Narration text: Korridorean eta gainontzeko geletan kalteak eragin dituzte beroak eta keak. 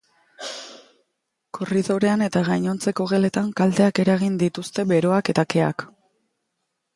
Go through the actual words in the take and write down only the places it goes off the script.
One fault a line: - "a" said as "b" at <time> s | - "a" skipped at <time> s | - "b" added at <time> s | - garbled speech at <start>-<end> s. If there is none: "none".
none